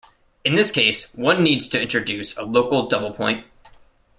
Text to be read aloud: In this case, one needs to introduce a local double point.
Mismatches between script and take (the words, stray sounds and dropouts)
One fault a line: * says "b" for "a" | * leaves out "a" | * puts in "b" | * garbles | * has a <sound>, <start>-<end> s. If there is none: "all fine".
all fine